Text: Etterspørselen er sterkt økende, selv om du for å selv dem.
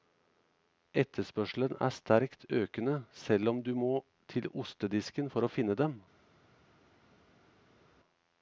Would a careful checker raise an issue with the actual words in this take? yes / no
yes